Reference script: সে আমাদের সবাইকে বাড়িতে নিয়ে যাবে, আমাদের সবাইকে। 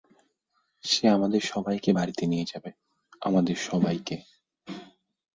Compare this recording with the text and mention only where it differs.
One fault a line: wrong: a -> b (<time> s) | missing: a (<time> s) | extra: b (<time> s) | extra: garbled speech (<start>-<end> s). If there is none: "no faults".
no faults